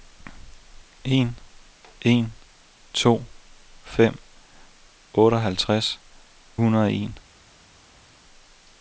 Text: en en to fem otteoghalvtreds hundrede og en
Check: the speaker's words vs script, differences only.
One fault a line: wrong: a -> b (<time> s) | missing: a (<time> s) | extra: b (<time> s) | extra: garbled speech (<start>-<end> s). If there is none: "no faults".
no faults